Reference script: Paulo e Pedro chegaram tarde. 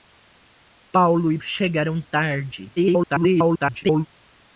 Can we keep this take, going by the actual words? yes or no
no